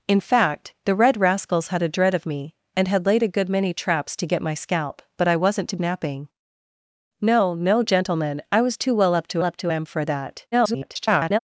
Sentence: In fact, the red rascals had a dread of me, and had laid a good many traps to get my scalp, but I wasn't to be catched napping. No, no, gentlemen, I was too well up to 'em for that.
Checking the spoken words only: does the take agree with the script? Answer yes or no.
no